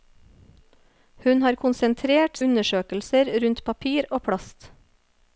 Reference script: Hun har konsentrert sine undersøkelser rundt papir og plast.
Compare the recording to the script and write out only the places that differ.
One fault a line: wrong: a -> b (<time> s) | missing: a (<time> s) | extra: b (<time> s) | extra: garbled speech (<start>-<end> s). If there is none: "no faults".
missing: sine (2.4 s)